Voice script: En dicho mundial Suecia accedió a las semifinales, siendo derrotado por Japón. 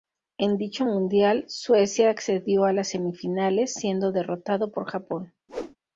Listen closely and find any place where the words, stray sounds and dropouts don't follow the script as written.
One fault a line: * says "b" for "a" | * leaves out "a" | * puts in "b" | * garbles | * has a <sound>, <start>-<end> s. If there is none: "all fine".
* has a whoosh, 5.5-5.8 s